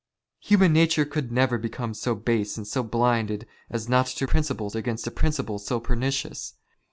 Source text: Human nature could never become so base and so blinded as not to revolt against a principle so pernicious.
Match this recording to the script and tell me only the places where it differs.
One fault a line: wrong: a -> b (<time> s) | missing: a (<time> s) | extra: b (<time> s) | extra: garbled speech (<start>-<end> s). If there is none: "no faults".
wrong: revolt -> principle (4.2 s)